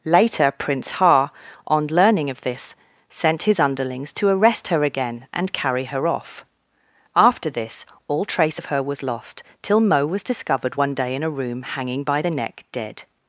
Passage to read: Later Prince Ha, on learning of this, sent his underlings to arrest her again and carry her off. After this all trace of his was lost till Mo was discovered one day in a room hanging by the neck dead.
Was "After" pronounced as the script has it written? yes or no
yes